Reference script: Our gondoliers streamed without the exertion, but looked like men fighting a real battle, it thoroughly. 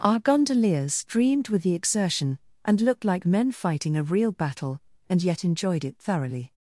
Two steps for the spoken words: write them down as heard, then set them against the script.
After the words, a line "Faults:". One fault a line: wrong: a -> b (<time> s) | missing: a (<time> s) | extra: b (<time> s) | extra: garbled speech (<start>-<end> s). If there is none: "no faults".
Our gondoliers streamed with the exertion, and looked like men fighting a real battle, and yet enjoyed it thoroughly.
Faults:
wrong: without -> with (1.5 s)
wrong: but -> and (2.6 s)
extra: and yet enjoyed (5.1 s)